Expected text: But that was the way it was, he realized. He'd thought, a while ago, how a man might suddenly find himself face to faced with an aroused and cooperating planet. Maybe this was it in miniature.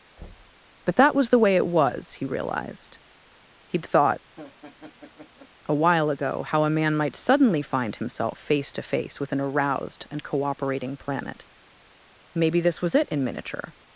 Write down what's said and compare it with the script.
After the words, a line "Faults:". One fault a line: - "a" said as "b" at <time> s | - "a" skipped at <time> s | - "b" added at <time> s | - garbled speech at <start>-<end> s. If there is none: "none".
But that was the way it was, he realized. He'd thought, a while ago, how a man might suddenly find himself face to face with an aroused and cooperating planet. Maybe this was it in miniature.
Faults:
- "faced" said as "face" at 8.8 s